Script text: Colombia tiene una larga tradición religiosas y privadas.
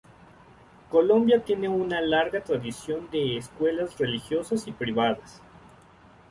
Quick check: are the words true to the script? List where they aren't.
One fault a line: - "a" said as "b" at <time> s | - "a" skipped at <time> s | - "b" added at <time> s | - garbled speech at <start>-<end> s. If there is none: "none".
- "de escuelas" added at 3.1 s